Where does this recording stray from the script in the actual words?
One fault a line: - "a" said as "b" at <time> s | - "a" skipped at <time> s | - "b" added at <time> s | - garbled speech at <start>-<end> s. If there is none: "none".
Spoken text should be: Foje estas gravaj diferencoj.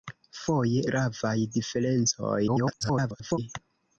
- "estas" skipped at 0.8 s
- garbled speech at 2.5-3.4 s